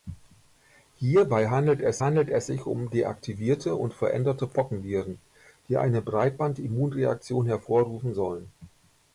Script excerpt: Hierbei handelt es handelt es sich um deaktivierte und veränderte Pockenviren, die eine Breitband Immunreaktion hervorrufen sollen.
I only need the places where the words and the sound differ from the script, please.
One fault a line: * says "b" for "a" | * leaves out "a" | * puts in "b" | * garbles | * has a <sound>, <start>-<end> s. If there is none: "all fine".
all fine